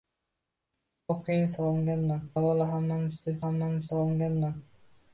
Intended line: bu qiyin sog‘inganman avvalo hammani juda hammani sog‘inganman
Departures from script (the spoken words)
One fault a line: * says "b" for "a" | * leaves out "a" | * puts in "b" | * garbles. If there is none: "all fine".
all fine